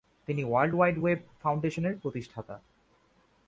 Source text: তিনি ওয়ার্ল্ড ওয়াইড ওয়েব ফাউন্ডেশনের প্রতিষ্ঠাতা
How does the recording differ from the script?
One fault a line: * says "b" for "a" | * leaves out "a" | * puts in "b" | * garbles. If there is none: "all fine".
all fine